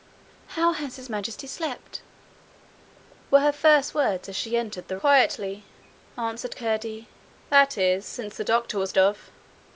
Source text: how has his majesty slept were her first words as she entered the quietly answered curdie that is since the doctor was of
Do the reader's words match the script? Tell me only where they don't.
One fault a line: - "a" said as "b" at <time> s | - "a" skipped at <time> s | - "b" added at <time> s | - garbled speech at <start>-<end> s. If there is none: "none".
none